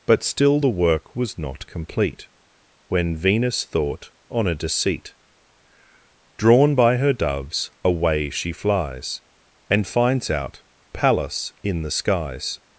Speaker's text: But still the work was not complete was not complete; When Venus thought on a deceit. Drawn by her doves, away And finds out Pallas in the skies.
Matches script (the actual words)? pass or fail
fail